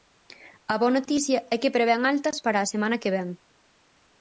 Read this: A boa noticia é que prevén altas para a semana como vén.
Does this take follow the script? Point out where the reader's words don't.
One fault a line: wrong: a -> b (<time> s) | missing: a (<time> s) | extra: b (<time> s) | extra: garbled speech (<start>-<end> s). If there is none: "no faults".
wrong: como -> que (3.0 s)